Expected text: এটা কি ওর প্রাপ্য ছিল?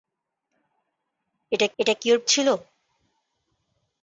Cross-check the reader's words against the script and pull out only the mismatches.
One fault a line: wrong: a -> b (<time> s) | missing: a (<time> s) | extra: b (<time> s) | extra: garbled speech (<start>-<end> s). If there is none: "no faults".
extra: এটা (1.8 s)
missing: প্রাপ্য (2.2 s)